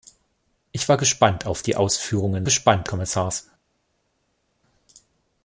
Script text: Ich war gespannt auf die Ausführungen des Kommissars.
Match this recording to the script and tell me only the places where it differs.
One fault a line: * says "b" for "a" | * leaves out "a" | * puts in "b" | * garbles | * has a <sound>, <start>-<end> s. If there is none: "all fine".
* says "gespannt" for "des"